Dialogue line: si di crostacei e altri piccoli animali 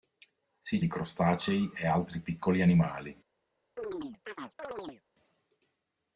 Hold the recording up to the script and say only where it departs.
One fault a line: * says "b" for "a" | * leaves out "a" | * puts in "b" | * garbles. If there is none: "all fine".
all fine